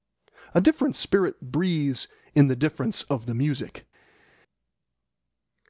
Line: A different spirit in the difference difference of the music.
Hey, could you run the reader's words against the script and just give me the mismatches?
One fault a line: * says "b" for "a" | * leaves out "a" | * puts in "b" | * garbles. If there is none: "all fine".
* puts in "breathes"
* leaves out "difference"